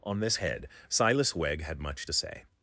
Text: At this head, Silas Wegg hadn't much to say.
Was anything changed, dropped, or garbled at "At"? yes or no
yes